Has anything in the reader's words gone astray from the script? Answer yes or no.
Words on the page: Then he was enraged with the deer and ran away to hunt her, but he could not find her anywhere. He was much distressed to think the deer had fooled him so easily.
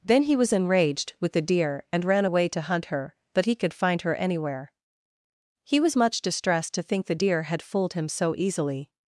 yes